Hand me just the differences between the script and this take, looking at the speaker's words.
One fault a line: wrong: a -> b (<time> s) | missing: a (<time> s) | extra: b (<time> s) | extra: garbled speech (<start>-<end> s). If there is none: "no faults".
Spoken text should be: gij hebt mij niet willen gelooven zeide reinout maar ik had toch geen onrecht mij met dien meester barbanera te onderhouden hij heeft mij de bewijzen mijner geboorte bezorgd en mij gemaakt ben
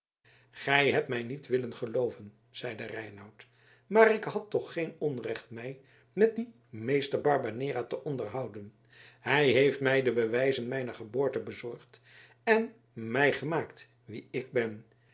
extra: wie ik (14.0 s)